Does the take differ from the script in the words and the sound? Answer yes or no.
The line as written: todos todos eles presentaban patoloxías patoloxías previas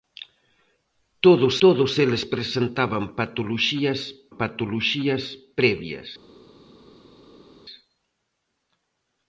no